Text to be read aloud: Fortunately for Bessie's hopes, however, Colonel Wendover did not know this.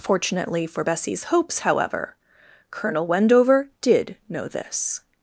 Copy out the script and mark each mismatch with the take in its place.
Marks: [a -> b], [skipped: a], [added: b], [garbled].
Fortunately for Bessie's hopes, however, Colonel Wendover did [skipped: not] know this.